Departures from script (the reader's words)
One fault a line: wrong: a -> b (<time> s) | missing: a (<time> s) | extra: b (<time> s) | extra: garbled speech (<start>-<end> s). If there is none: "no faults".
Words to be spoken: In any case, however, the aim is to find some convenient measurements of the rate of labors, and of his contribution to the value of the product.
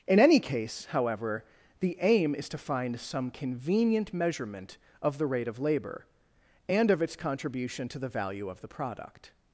wrong: measurements -> measurement (4.1 s)
wrong: labors -> labor (5.6 s)
wrong: his -> its (7.0 s)